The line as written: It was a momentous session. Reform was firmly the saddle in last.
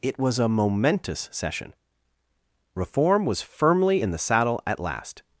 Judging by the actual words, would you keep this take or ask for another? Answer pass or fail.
fail